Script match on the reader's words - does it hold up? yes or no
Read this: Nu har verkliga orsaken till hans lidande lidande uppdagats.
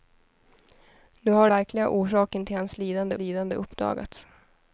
yes